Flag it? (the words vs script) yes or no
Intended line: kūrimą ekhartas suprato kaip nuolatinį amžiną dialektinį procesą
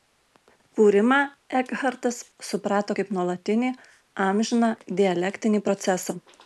no